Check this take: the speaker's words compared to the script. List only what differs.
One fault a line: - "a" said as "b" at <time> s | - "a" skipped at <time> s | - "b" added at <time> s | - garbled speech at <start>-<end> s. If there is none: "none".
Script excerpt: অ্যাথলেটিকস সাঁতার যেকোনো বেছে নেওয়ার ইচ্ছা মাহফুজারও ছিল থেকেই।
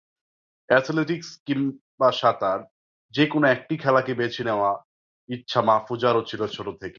- "কিংবা" added at 1.4 s
- "একটি খেলাকে" added at 3.5 s
- "ছোট" added at 6.5 s